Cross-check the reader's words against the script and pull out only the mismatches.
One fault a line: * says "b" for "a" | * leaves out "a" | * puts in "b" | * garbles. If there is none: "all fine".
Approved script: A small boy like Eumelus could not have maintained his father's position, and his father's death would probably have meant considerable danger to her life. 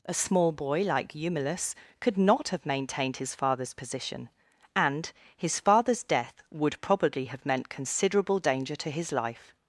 * says "his" for "her"